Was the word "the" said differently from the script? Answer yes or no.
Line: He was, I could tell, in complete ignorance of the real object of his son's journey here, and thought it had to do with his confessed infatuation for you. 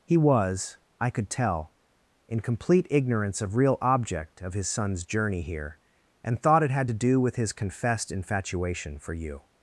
yes